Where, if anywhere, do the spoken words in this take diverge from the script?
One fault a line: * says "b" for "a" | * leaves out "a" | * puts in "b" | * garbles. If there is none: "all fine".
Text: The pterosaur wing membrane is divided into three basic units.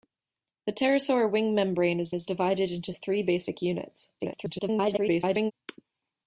* puts in "is"
* garbles